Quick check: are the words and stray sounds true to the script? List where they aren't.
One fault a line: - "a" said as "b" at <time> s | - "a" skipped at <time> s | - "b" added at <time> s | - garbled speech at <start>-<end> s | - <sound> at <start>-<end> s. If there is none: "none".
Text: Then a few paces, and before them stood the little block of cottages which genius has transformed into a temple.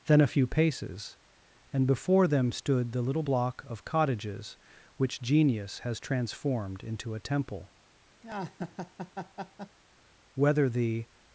- laugh at 8.2-9.8 s
- "Whether the" added at 10.3 s